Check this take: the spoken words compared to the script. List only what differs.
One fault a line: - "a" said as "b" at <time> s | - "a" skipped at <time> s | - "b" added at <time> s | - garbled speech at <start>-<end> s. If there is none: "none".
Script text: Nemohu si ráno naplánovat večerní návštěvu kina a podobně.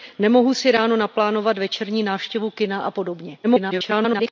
- garbled speech at 3.4-4.3 s